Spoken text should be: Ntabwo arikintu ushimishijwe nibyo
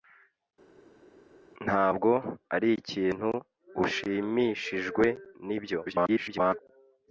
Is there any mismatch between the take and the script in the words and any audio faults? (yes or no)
yes